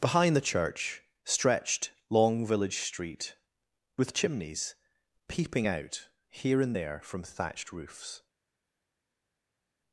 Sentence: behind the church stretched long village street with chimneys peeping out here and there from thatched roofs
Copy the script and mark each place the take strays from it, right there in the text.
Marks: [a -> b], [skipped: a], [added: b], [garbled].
behind the church stretched long village street with chimneys peeping out here and there from thatched roofs